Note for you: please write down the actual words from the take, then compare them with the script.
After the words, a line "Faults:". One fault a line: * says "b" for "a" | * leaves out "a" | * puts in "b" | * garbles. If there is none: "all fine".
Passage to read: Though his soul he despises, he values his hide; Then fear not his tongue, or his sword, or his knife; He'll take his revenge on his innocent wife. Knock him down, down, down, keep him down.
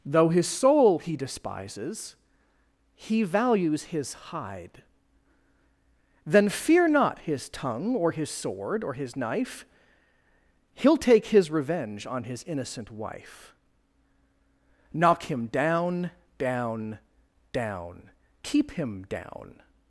Though his soul he despises, he values his hide; Then fear not his tongue, or his sword, or his knife; He'll take his revenge on his innocent wife. Knock him down, down, down, keep him down.
Faults:
all fine